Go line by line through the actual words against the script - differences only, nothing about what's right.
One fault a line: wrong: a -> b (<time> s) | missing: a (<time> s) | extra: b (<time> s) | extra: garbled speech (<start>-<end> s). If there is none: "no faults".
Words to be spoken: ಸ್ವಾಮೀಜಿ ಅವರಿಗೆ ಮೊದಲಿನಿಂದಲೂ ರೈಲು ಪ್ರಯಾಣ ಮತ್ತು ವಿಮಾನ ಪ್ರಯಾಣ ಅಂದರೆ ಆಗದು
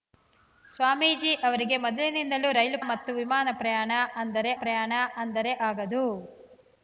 missing: ಪ್ರಯಾಣ (2.8 s)
extra: ಪ್ರಯಾಣ ಅಂದರೆ (4.6 s)